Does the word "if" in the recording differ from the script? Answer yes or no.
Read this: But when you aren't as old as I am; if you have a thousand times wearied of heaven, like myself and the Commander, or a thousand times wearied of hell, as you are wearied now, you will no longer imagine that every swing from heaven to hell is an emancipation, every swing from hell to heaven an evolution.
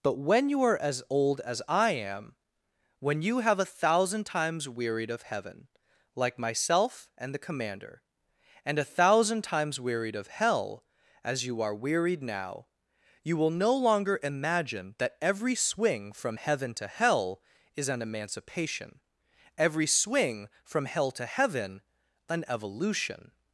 yes